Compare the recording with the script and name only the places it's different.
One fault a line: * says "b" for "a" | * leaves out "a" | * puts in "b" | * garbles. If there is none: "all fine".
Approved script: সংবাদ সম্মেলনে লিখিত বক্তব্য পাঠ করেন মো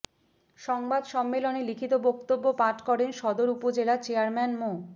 * puts in "সদর উপজেলা চেয়ারম্যান"